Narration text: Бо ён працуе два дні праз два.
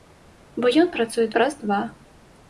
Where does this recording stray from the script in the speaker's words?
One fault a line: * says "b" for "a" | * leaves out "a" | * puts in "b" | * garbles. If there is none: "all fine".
* leaves out "два дні"